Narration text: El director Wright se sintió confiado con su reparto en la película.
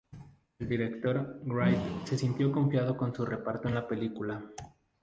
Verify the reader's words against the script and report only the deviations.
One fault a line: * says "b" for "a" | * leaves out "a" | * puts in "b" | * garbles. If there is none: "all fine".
all fine